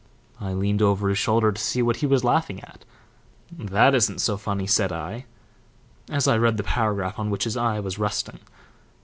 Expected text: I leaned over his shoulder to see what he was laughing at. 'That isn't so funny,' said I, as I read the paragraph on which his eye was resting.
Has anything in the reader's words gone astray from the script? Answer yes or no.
no